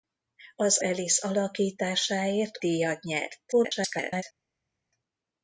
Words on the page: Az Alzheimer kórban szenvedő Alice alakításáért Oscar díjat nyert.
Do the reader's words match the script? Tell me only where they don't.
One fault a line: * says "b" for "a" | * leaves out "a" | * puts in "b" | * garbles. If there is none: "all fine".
* leaves out "Alzheimer kórban szenvedő"
* leaves out "Oscar"
* garbles